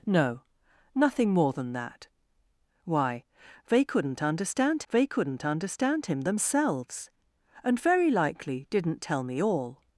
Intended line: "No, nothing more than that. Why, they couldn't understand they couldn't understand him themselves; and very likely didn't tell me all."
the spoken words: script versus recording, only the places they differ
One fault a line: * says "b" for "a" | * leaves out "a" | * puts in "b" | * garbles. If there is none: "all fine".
all fine